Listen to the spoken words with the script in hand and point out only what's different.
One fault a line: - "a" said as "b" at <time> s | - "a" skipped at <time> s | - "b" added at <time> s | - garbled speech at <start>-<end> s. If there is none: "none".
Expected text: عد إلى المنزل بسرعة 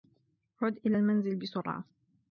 none